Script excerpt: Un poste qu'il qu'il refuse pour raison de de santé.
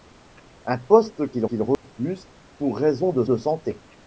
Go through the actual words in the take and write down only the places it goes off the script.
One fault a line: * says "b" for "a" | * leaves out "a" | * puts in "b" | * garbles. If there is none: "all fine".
all fine